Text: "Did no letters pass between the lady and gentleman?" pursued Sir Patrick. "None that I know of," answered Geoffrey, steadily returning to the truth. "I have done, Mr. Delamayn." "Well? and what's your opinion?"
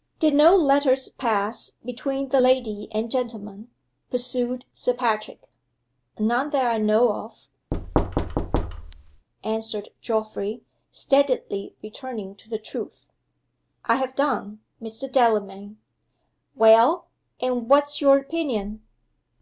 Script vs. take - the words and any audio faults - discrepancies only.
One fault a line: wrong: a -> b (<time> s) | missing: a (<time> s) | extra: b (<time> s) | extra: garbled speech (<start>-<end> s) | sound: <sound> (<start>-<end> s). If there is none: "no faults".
sound: thud (7.7-9.3 s)